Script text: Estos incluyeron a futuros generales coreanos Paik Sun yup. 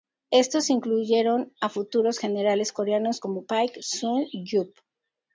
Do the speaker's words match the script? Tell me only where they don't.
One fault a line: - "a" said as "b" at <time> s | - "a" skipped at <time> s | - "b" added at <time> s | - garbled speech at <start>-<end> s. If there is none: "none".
- "como" added at 3.2 s